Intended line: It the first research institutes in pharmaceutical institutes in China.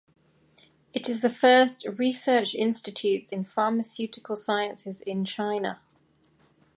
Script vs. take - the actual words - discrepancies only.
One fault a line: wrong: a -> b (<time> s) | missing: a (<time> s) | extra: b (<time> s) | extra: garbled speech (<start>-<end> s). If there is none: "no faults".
extra: is (1.1 s)
wrong: institutes -> sciences (4.3 s)